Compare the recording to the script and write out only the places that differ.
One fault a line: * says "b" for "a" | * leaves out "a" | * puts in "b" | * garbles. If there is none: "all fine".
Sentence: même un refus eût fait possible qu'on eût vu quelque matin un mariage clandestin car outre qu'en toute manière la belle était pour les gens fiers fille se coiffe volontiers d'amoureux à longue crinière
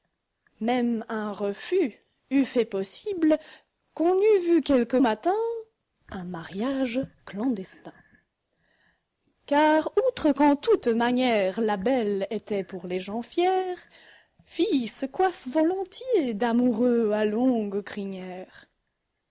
all fine